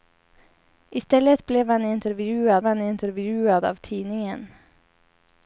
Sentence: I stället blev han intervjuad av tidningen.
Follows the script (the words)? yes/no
no